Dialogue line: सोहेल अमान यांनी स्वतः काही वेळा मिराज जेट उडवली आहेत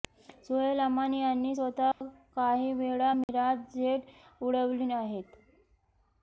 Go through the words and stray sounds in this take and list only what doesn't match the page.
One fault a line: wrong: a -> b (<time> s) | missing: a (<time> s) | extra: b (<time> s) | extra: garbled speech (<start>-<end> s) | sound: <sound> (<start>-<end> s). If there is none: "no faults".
sound: dropout (1.9-2.0 s)
sound: dropout (3.2-3.3 s)